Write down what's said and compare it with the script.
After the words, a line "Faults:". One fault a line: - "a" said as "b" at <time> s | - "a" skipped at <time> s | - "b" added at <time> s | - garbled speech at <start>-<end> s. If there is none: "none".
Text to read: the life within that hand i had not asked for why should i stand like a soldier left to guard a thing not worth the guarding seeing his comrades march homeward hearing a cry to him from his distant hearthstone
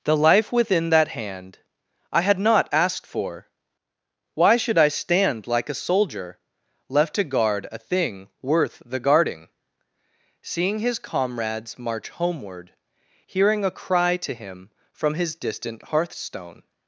the life within that hand i had not asked for why should i stand like a soldier left to guard a thing worth the guarding seeing his comrades march homeward hearing a cry to him from his distant hearthstone
Faults:
- "not" skipped at 8.3 s